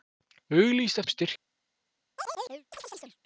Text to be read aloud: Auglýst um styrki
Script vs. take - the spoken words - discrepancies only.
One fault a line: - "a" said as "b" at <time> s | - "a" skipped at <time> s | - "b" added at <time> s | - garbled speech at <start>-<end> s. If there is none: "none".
none